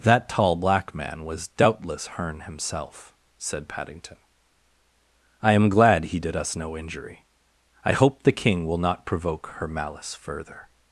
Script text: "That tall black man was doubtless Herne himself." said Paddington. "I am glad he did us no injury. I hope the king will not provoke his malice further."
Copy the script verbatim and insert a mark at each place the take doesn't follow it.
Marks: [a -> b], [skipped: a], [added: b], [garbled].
"That tall black man was doubtless Herne himself." said Paddington. "I am glad he did us no injury. I hope the king will not provoke [his -> her] malice further."